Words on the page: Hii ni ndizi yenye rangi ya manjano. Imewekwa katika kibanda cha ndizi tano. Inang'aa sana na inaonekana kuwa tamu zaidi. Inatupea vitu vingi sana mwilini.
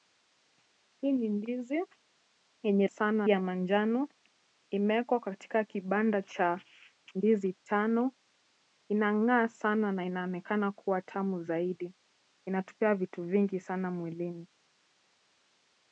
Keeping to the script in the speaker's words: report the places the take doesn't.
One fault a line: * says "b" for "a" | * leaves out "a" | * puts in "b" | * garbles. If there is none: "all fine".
* says "sana" for "rangi"